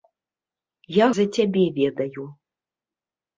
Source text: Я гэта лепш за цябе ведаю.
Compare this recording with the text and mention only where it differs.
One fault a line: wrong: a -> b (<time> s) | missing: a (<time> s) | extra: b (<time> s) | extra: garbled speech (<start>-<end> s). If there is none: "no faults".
missing: гэта лепш (1.1 s)